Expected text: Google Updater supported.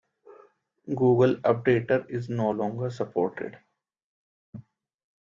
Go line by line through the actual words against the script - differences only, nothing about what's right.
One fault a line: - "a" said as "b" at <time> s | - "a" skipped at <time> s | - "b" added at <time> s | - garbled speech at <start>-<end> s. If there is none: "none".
- "is no longer" added at 2.1 s